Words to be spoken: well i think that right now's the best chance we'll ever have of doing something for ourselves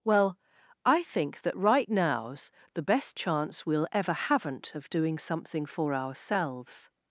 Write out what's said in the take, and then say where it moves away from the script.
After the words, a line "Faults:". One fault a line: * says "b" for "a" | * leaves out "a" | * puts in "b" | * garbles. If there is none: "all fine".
well i think that right now's the best chance we'll ever haven't of doing something for ourselves
Faults:
* says "haven't" for "have"